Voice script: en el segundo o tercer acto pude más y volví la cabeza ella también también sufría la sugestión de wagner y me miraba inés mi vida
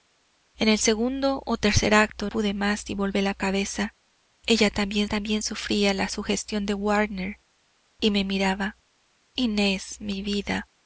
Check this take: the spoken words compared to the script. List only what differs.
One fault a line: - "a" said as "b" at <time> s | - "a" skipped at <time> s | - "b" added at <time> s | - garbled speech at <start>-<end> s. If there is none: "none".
none